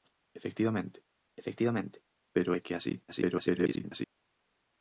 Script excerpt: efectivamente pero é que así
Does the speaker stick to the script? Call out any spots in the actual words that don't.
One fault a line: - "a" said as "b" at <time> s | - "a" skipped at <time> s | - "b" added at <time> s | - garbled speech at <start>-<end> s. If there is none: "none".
- "efectivamente" added at 1.4 s
- garbled speech at 3.1-4.1 s